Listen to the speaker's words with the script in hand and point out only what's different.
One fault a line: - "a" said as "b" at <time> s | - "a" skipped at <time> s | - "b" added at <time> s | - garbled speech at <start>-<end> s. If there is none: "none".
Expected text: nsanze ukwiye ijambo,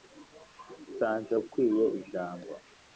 none